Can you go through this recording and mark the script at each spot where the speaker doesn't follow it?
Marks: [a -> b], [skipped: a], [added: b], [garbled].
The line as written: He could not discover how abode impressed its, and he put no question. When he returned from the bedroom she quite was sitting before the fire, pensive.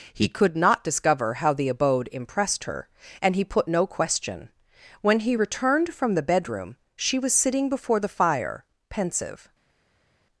He could not discover how [added: the] abode impressed [its, -> her] and he put no question. When he returned from the bedroom she [skipped: quite] was sitting before the fire, pensive.